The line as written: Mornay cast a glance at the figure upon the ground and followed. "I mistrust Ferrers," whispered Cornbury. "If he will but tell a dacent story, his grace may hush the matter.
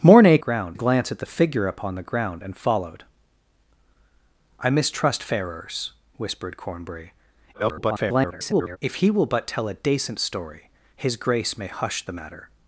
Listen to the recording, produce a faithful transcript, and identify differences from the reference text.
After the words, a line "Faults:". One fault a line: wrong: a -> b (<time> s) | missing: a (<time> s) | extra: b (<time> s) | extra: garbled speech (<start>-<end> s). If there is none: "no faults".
Mornay ground a glance at the figure upon the ground and followed. "I mistrust Ferrers," whispered Cornbury. [garbled] "If he will but tell a dacent story, his grace may hush the matter.
Faults:
wrong: cast -> ground (0.4 s)
extra: garbled speech (7.5-8.8 s)